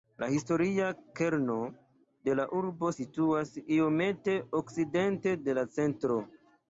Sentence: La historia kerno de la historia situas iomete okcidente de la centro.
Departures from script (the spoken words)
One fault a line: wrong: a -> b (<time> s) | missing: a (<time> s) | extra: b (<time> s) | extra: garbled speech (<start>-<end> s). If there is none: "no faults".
wrong: historia -> urbo (2.6 s)